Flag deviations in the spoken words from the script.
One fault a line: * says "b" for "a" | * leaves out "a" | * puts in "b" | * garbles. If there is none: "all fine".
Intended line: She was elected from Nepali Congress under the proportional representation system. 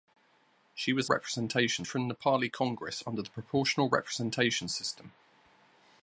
* says "representation" for "elected"